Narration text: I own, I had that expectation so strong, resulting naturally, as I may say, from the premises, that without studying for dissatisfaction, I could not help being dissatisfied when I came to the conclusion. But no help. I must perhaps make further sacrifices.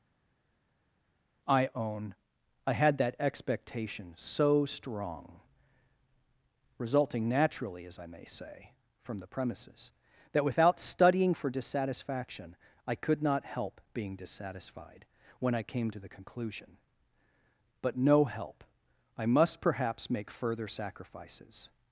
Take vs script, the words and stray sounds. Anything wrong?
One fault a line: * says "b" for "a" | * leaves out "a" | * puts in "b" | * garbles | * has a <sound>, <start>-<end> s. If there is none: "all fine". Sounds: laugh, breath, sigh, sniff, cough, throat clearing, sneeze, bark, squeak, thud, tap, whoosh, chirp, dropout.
all fine